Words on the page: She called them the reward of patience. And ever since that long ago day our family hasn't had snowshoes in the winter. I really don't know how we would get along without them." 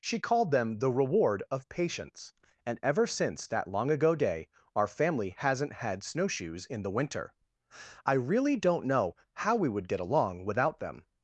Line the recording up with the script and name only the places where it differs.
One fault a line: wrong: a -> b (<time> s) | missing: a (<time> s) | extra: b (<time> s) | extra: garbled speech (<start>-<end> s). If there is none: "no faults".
no faults